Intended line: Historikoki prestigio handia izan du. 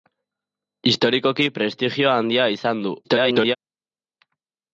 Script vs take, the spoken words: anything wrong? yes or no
yes